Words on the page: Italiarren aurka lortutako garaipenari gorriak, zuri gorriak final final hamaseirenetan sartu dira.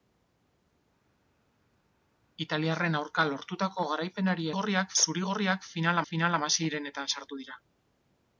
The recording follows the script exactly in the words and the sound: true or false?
true